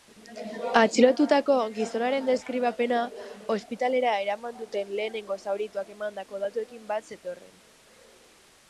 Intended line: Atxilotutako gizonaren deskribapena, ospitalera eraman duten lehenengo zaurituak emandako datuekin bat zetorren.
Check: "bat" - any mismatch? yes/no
no